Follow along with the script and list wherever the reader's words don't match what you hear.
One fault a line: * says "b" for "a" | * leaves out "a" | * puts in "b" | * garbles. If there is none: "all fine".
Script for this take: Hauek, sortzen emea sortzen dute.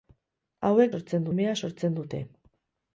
all fine